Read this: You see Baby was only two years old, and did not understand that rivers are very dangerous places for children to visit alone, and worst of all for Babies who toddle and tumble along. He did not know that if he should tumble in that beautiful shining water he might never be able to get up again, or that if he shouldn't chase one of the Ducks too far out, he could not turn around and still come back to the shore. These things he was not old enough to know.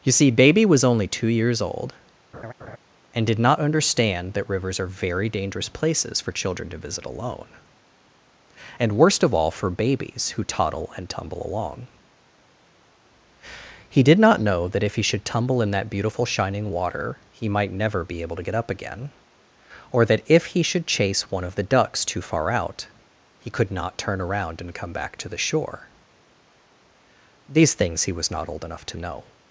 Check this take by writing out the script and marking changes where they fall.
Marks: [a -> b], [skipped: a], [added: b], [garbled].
You see Baby was only two years old, and did not understand that rivers are very dangerous places for children to visit alone, and worst of all for Babies who toddle and tumble along. He did not know that if he should tumble in that beautiful shining water he might never be able to get up again, or that if he [shouldn't -> should] chase one of the Ducks too far out, he could not turn around and [skipped: still] come back to the shore. These things he was not old enough to know.